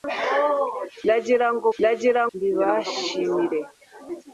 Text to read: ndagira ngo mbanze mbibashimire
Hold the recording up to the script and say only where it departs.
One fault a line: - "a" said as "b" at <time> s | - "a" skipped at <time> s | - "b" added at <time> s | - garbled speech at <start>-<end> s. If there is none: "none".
- "mbanze" said as "ndagira" at 1.8 s